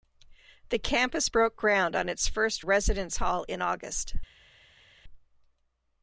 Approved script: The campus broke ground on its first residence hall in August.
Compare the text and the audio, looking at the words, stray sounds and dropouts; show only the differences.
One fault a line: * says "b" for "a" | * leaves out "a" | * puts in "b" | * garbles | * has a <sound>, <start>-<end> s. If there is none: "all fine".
all fine